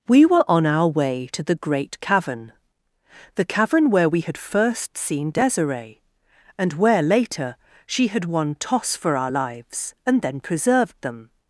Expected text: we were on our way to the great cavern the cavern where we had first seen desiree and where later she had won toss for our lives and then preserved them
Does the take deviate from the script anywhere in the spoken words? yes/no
no